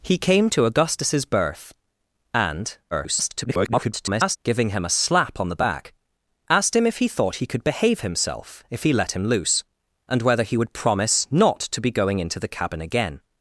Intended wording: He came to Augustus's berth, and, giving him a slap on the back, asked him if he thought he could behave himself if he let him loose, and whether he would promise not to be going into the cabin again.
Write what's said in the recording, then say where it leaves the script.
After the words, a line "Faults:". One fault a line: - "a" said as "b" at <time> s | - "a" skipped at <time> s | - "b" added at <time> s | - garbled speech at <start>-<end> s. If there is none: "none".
He came to Augustus's berth, and, [garbled] giving him a slap on the back, asked him if he thought he could behave himself if he let him loose, and whether he would promise not to be going into the cabin again.
Faults:
- garbled speech at 2.9-4.4 s